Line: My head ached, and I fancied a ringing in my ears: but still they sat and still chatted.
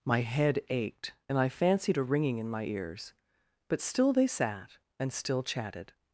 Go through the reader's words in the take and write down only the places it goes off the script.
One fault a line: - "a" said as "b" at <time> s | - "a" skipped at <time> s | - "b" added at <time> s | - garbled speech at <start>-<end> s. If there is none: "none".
none